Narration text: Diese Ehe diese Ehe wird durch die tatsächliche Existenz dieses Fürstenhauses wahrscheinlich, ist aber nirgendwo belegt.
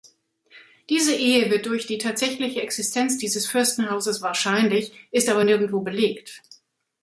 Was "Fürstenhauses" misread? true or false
false